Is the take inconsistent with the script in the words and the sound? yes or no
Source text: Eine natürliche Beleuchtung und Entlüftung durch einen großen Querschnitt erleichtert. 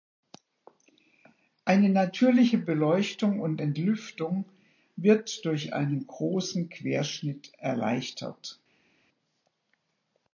yes